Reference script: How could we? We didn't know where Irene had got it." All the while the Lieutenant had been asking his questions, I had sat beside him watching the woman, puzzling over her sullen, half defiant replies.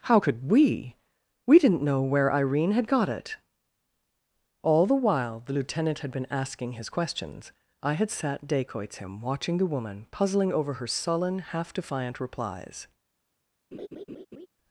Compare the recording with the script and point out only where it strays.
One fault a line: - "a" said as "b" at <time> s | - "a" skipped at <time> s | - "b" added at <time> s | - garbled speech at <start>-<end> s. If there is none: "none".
- "beside" said as "dacoits" at 8.4 s